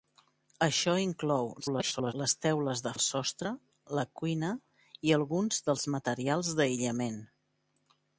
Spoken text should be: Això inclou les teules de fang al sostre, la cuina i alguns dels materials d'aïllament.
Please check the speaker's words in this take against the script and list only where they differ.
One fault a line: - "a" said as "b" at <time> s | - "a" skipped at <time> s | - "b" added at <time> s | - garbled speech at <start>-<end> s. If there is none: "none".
- garbled speech at 1.6-2.1 s
- "fang" skipped at 2.9 s